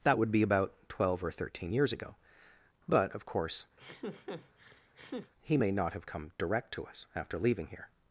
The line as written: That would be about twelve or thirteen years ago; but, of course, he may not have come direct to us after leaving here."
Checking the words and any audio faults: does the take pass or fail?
fail